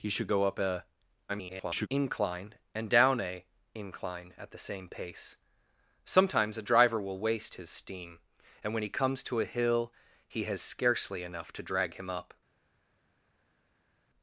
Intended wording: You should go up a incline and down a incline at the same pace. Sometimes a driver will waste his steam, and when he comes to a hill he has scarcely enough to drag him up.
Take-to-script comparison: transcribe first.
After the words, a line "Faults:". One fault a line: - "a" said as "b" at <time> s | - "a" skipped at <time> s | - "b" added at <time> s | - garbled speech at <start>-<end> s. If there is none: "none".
You should go up a [garbled] incline and down a incline at the same pace. Sometimes a driver will waste his steam, and when he comes to a hill he has scarcely enough to drag him up.
Faults:
- garbled speech at 1.3-1.9 s